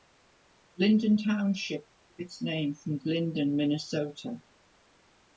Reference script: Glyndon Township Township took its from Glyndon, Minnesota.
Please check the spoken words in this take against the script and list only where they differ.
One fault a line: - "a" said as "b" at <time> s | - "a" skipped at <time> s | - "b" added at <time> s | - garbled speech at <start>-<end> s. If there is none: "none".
- "Township" skipped at 1.9 s
- "name" added at 2.4 s